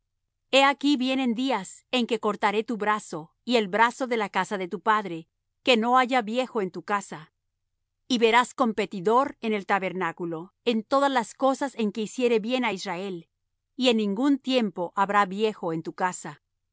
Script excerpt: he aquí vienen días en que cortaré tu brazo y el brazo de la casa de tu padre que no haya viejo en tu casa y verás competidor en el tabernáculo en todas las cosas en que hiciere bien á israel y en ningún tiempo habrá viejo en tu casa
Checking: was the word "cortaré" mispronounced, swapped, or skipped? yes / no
no